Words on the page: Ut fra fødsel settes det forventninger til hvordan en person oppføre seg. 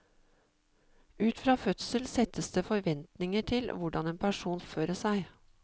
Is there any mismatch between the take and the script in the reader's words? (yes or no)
no